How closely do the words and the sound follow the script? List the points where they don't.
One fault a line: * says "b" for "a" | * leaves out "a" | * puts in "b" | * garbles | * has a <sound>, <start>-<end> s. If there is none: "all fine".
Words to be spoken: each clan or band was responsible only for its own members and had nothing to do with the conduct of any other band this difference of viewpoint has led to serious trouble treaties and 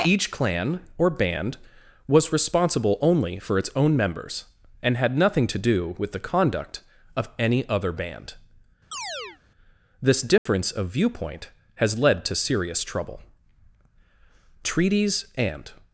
* has a chirp, 8.9-9.4 s
* has a dropout, 10.4-10.5 s